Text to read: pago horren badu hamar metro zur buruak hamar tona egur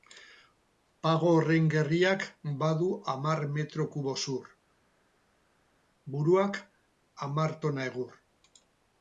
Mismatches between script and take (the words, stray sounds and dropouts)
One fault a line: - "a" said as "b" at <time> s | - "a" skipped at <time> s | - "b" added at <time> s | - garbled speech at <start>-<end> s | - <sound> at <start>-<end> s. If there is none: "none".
- "gerriak" added at 1.7 s
- "kubo" added at 4.0 s